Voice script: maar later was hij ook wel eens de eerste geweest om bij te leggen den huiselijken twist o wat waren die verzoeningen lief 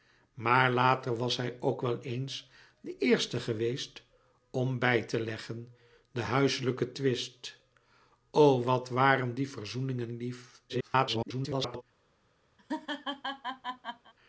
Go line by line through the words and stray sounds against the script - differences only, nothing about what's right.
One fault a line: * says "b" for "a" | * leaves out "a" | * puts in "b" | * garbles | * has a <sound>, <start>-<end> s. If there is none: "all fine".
* garbles
* has a laugh, 12.6-14.1 s